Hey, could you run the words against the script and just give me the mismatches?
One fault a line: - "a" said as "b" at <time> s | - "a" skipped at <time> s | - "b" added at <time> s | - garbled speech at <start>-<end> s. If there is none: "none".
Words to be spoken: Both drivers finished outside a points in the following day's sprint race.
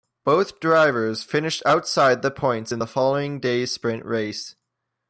- "a" said as "the" at 2.2 s